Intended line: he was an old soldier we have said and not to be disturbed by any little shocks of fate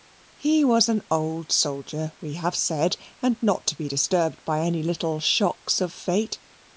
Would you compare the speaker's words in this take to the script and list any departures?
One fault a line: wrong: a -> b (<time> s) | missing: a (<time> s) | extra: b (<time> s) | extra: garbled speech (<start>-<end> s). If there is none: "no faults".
no faults